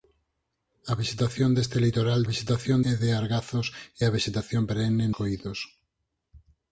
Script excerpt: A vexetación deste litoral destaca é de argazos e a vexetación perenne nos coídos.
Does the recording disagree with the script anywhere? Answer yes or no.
yes